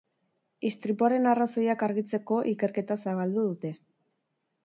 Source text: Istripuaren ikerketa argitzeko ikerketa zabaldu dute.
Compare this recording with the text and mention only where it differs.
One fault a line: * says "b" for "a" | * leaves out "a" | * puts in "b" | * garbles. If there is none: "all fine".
* says "arrazoiak" for "ikerketa"